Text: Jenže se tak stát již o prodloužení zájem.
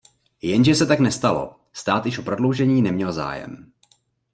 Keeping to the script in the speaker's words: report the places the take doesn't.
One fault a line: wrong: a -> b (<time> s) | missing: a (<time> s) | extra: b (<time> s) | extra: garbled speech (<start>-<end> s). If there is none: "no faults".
extra: nestalo (1.0 s)
extra: neměl (2.8 s)